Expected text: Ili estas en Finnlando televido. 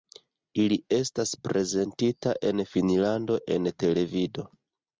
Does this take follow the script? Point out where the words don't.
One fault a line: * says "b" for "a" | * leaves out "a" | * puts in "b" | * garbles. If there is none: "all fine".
* puts in "prezentita"
* puts in "en"